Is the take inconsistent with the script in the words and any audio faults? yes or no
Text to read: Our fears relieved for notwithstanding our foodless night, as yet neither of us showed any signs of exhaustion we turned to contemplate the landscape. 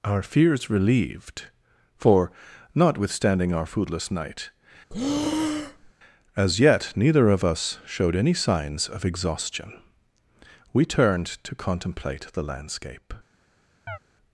yes